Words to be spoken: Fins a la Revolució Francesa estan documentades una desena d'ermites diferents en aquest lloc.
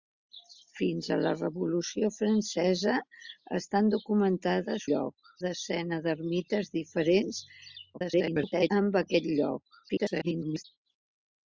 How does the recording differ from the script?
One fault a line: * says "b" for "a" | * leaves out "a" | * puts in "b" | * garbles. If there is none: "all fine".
* says "lloc" for "una"
* garbles
* garbles